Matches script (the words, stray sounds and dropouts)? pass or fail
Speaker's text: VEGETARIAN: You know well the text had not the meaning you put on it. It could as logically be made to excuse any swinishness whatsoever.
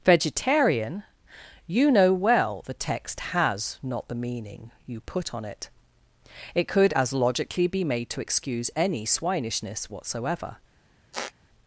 fail